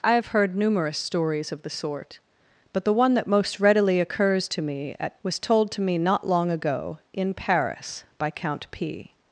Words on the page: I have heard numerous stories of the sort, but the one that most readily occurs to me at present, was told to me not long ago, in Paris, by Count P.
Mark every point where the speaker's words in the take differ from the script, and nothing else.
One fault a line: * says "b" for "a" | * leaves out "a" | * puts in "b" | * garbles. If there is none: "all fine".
* leaves out "present"